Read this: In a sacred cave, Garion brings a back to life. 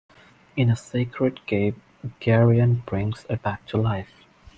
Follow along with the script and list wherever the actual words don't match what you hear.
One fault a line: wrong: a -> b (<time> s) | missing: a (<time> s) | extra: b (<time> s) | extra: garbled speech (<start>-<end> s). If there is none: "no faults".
no faults